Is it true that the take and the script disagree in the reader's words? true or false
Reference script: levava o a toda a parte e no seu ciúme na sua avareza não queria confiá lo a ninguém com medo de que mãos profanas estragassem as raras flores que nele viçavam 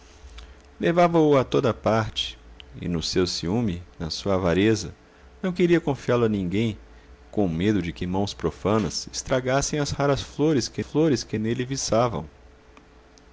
true